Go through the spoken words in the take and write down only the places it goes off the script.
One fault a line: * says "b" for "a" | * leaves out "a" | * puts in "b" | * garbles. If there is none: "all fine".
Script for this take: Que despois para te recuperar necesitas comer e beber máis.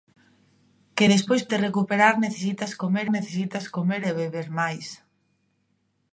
* leaves out "para"
* puts in "necesitas comer"